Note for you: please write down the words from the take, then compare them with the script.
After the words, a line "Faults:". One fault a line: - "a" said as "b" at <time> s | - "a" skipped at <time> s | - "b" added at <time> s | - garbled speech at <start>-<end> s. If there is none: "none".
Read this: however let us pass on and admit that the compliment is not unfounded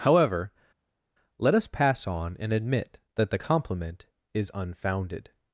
however let us pass on and admit that the compliment is unfounded
Faults:
- "not" skipped at 4.5 s